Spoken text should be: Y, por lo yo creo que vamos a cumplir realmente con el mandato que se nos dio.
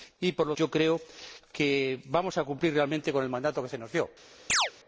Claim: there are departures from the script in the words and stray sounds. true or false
true